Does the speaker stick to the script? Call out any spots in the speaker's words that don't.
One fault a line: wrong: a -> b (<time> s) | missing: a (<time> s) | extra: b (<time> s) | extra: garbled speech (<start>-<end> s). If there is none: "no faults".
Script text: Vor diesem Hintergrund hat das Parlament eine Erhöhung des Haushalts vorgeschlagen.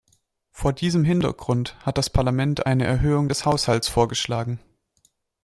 no faults